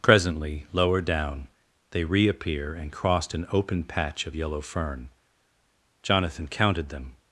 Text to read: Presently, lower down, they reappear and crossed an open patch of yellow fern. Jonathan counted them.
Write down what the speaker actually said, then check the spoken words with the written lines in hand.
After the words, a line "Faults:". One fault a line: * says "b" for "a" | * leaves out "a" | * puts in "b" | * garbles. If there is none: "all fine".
Presently, lower down, they reappear and crossed an open patch of yellow fern. Jonathan counted them.
Faults:
all fine